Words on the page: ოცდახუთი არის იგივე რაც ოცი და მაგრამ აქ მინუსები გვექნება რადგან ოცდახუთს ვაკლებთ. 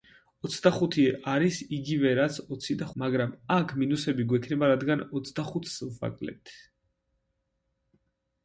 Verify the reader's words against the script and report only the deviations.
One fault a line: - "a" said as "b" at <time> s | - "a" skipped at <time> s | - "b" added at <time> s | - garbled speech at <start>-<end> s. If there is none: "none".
none